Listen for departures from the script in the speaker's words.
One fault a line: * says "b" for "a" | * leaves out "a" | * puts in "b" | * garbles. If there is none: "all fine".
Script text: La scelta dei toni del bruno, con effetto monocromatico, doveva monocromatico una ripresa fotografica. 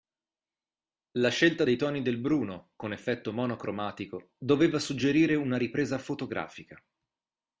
* says "suggerire" for "monocromatico"